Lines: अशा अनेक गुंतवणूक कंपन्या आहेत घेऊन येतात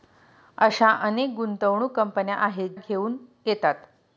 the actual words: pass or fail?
pass